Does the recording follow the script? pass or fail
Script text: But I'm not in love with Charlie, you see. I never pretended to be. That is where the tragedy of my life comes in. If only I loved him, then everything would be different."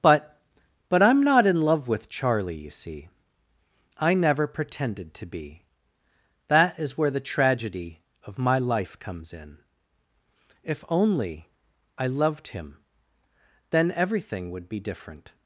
fail